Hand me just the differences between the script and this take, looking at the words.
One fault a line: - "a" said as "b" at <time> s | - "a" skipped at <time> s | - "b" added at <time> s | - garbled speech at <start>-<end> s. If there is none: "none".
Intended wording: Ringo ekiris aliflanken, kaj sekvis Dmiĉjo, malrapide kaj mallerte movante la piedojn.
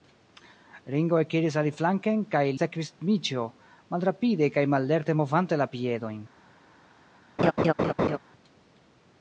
none